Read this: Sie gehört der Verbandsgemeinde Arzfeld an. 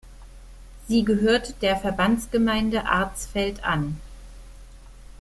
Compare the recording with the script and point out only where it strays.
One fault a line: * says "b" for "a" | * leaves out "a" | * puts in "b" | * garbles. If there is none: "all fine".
all fine